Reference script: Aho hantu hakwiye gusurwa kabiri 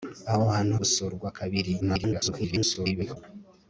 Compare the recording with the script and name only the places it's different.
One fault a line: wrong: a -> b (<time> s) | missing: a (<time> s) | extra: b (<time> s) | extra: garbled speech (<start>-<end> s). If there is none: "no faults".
missing: hakwiye (0.7 s)
extra: garbled speech (1.8-3.2 s)